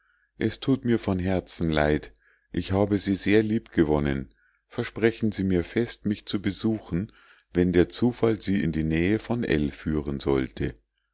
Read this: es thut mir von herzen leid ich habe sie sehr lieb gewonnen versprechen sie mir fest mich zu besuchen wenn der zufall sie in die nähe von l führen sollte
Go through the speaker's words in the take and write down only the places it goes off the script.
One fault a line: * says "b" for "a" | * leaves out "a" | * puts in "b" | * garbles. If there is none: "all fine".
all fine